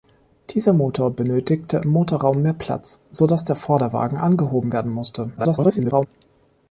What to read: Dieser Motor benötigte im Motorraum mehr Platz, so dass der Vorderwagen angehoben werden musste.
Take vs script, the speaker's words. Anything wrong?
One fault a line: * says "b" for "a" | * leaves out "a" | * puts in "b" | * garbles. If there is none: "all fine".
* garbles